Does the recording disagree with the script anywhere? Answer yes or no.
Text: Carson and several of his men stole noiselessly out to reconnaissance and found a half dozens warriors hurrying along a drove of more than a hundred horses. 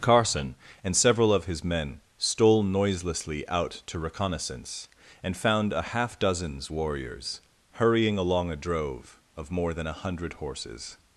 no